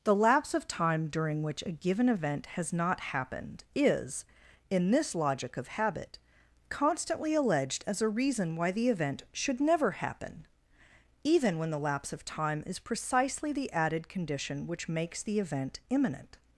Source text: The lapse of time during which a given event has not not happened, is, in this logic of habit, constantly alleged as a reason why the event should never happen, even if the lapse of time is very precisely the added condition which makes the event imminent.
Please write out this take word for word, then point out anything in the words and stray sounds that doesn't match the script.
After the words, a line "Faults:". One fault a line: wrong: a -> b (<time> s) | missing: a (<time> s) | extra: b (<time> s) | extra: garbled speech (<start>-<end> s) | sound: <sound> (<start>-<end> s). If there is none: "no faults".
The lapse of time during which a given event has not happened, is, in this logic of habit, constantly alleged as a reason why the event should never happen, even when the lapse of time is precisely the added condition which makes the event imminent.
Faults:
missing: not (3.0 s)
wrong: if -> when (11.6 s)
missing: very (12.8 s)